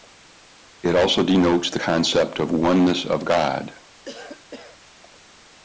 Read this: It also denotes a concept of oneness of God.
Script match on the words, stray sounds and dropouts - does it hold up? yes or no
no